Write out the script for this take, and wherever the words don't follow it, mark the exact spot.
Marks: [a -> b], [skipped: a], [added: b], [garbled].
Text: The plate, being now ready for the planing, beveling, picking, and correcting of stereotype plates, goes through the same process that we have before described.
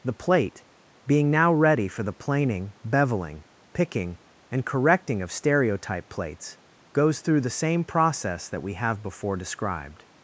The plate, being now ready for the planing, beveling, picking, and correcting of stereotype plates, goes through the same process that we have before described.